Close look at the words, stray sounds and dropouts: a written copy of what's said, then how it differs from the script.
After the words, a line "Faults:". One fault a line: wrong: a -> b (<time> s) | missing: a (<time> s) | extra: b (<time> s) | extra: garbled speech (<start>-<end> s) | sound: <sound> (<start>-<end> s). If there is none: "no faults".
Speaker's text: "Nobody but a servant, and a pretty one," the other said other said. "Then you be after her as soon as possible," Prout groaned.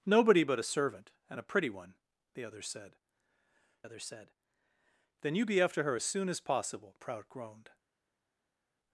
"Nobody but a servant, and a pretty one," the other said other said. "Then you be after her as soon as possible," Prout groaned.
Faults:
no faults